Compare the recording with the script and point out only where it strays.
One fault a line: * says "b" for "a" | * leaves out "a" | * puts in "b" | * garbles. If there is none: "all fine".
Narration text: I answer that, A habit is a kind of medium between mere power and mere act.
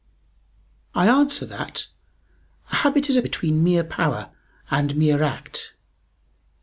* leaves out "kind of medium"